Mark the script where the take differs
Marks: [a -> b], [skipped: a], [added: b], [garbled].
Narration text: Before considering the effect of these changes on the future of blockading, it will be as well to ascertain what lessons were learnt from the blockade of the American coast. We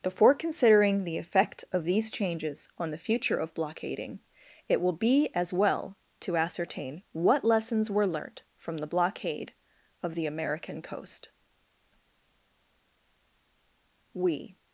Before considering the effect of these changes on the future of blockading, it will be as well to ascertain what lessons were learnt from the blockade of the American coast. We